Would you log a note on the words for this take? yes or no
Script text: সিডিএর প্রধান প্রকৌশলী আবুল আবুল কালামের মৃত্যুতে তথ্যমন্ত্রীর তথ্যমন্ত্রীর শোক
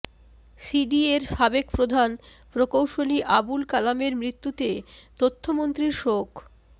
yes